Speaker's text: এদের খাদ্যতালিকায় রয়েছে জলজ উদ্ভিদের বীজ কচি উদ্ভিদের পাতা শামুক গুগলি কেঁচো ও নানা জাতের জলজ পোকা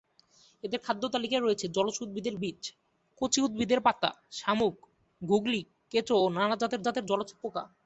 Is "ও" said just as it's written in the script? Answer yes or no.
yes